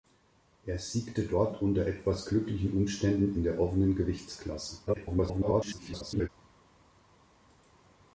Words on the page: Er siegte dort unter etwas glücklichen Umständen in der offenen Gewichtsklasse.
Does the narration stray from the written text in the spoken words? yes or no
yes